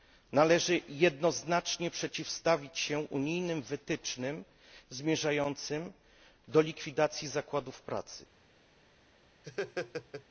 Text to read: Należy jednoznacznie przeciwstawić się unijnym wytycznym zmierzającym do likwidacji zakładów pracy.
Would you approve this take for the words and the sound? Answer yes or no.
no